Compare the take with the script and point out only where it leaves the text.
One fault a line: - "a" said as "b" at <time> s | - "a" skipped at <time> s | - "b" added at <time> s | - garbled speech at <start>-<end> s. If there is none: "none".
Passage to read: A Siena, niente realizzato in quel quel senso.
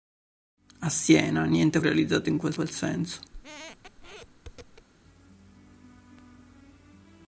none